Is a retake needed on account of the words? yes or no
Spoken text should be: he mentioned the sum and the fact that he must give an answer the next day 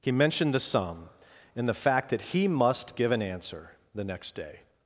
no